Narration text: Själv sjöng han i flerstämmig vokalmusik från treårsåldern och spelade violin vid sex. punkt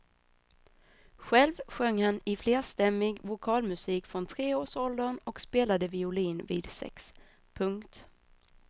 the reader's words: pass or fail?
pass